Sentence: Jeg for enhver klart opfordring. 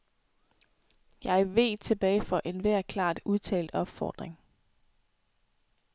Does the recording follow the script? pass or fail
fail